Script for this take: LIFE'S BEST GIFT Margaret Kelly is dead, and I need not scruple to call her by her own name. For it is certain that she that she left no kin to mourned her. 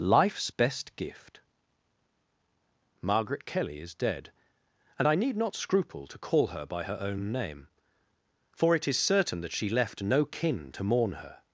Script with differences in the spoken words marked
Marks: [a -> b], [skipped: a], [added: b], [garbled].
LIFE'S BEST GIFT Margaret Kelly is dead, and I need not scruple to call her by her own name. For it is certain that she [skipped: that she] left no kin to [mourned -> mourn] her.